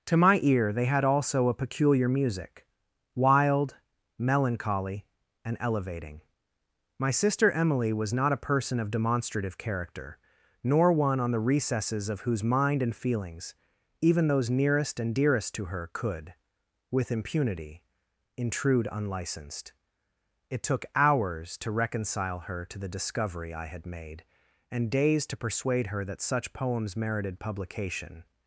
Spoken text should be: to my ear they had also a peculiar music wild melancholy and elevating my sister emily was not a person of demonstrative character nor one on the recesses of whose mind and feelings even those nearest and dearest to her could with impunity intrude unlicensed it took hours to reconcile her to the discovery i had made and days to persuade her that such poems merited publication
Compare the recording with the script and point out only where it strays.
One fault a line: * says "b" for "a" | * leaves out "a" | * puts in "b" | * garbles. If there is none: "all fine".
all fine